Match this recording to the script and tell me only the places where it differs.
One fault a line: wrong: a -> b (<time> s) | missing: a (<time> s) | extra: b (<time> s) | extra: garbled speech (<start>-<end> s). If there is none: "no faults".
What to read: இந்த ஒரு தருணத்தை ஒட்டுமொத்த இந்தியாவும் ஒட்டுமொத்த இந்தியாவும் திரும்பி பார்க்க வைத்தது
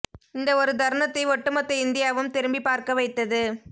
missing: ஒட்டுமொத்த இந்தியாவும் (2.3 s)